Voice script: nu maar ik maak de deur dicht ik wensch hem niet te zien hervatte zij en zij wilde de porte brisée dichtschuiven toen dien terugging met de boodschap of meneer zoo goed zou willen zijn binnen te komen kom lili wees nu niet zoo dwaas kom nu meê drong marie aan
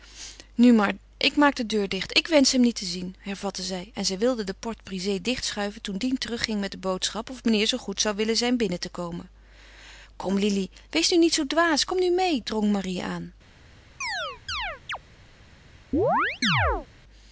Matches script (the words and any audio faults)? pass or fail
fail